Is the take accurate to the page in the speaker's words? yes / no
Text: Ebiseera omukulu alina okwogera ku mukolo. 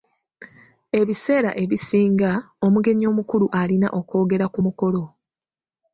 no